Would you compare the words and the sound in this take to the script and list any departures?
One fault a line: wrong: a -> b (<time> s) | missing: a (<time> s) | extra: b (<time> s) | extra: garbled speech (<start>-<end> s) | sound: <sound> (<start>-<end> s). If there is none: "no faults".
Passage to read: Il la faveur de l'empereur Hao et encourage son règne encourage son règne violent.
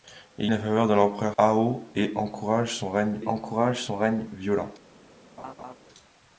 sound: laugh (5.4-5.7 s)